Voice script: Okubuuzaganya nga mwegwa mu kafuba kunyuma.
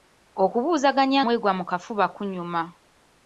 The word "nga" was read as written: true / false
false